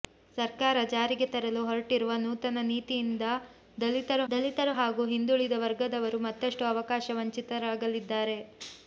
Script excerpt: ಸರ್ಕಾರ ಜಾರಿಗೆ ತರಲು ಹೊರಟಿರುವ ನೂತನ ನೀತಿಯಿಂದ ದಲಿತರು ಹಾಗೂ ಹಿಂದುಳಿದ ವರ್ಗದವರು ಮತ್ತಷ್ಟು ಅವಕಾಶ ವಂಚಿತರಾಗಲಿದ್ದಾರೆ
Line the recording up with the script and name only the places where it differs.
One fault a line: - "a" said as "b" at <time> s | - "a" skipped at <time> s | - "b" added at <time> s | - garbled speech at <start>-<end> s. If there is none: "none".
- "ದಲಿತರು" added at 4.3 s